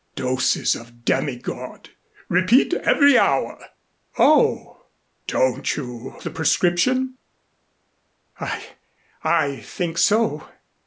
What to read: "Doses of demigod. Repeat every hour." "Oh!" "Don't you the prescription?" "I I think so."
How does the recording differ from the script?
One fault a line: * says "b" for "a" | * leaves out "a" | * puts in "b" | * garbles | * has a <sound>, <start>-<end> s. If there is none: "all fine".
all fine